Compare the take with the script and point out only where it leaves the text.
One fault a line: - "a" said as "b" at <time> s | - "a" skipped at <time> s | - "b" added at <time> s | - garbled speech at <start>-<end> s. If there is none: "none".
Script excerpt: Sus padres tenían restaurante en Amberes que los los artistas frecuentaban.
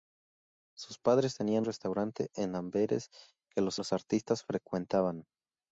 none